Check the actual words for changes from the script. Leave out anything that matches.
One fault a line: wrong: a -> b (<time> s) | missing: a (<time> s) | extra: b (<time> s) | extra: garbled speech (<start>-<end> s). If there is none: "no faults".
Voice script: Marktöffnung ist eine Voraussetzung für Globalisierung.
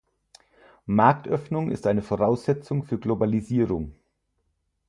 no faults